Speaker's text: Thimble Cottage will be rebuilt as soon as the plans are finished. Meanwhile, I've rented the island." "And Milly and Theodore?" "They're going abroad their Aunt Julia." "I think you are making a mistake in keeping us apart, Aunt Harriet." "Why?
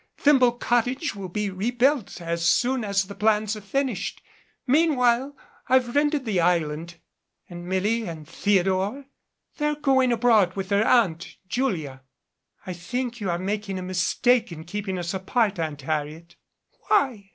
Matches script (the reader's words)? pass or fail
fail